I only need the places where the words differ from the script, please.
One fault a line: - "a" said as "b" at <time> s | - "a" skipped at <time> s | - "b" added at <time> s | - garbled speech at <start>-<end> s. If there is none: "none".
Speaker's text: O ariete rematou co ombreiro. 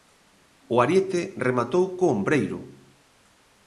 none